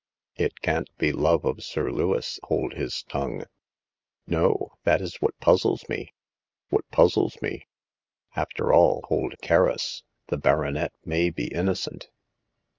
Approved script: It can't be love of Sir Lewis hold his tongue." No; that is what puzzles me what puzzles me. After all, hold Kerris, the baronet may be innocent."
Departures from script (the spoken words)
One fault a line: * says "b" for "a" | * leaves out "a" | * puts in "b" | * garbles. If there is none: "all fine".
all fine